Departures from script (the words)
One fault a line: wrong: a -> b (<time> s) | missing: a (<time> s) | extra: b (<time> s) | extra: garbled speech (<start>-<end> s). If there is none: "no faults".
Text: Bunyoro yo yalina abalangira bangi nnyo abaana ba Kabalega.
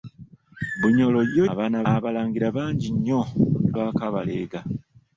wrong: yalina -> abaana (1.5 s)
missing: abaana (3.2 s)